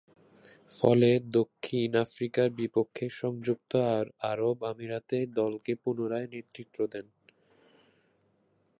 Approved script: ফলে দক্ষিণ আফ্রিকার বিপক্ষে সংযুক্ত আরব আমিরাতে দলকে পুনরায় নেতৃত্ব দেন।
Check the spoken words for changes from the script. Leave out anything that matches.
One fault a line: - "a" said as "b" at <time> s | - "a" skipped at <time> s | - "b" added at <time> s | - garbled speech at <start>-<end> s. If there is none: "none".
none